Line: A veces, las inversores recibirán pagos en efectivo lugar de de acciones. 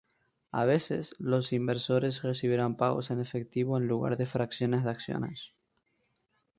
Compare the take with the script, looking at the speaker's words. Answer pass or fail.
fail